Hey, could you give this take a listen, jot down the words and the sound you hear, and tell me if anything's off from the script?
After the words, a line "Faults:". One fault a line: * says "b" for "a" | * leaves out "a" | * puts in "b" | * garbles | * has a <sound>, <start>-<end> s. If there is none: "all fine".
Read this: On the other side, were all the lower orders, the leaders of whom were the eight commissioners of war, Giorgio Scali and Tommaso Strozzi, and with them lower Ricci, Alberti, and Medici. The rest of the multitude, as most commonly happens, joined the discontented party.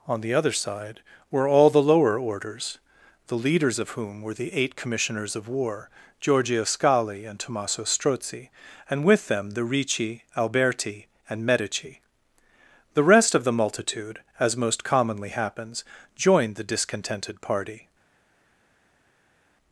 On the other side, were all the lower orders, the leaders of whom were the eight commissioners of war, Giorgio Scali and Tommaso Strozzi, and with them the Ricci, Alberti, and Medici. The rest of the multitude, as most commonly happens, joined the discontented party.
Faults:
* says "the" for "lower"